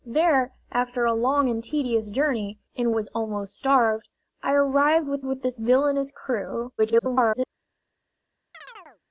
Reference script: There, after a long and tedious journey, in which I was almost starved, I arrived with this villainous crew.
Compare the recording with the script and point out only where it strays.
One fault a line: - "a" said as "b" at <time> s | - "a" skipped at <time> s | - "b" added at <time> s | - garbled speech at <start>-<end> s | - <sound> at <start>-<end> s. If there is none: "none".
- "which I" skipped at 2.9 s
- "with" added at 5.2 s
- garbled speech at 6.8-7.5 s
- chirp at 8.5-9.0 s